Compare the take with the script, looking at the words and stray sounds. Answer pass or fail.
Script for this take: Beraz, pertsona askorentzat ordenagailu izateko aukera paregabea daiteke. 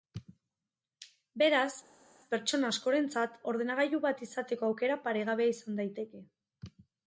fail